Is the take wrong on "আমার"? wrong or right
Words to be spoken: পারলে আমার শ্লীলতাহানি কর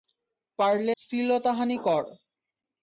wrong